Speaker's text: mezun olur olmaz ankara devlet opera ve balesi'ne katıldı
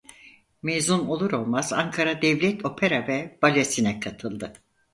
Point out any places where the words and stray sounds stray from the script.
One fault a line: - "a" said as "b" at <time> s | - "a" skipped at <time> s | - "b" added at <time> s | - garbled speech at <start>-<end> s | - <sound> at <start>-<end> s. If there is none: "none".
none